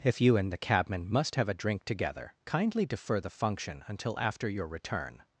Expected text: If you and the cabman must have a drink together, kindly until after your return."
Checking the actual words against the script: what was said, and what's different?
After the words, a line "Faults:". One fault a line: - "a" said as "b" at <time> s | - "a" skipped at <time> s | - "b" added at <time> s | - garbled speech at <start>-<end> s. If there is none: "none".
If you and the cabman must have a drink together, kindly defer the function until after your return."
Faults:
- "defer the function" added at 2.9 s